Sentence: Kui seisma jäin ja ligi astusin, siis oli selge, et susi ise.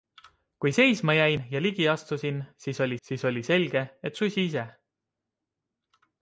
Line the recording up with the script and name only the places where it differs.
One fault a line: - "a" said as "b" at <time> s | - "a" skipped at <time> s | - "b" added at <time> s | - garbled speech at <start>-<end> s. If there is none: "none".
- "siis oli" added at 3.0 s